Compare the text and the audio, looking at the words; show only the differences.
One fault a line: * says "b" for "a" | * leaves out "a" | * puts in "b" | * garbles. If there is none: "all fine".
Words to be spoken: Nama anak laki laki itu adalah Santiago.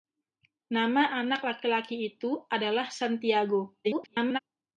* garbles